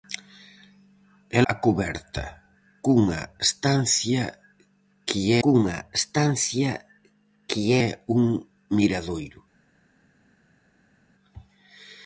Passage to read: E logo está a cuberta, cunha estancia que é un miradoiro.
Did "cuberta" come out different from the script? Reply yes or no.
yes